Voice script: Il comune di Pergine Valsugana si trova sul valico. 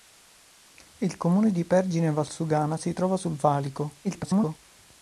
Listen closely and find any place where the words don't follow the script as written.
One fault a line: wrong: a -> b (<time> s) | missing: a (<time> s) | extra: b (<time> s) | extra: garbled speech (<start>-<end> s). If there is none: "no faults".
extra: garbled speech (4.0-4.6 s)